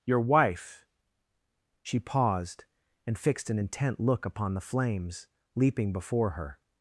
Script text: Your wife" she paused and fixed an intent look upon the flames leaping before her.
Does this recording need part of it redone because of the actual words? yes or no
no